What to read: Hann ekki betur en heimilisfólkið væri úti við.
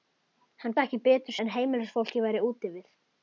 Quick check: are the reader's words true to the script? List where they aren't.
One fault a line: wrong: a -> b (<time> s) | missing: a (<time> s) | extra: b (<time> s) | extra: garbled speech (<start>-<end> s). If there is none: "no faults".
no faults